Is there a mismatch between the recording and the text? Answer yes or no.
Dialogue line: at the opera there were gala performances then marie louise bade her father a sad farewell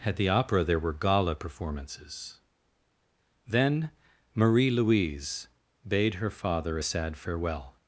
no